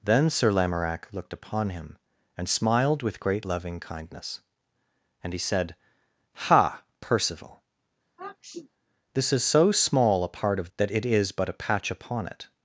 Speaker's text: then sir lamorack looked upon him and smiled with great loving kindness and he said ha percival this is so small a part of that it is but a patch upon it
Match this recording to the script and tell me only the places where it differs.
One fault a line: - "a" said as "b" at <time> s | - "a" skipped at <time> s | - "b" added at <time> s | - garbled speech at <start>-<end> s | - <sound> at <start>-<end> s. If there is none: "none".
- sniff at 8.2-8.7 s